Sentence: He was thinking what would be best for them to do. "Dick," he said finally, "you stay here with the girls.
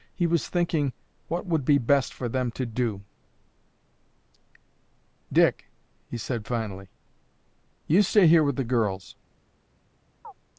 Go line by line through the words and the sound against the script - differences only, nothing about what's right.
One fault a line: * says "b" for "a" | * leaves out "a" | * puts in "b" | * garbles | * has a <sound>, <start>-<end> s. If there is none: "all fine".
* has a chirp, 10.2-10.3 s